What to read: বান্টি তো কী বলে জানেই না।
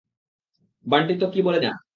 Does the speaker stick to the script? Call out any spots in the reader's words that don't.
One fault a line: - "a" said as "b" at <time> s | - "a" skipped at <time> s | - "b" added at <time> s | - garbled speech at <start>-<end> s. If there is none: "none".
- "জানেই" skipped at 1.6 s